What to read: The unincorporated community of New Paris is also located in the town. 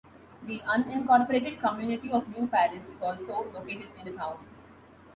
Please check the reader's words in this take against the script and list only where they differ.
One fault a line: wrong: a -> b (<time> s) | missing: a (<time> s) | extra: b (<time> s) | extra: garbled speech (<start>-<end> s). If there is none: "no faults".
no faults